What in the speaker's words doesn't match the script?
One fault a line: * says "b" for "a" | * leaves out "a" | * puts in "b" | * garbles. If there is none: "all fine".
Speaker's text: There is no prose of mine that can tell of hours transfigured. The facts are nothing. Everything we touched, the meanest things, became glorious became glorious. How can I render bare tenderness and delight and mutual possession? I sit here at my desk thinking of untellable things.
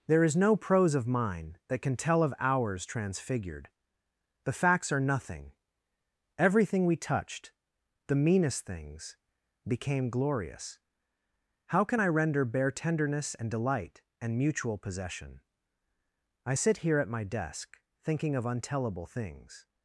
* leaves out "became glorious"